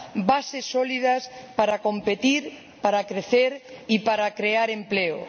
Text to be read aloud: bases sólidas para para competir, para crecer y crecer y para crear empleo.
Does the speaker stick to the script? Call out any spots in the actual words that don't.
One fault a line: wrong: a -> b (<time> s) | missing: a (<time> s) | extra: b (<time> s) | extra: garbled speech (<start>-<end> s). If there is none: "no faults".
missing: para (1.8 s)
missing: crecer y (4.0 s)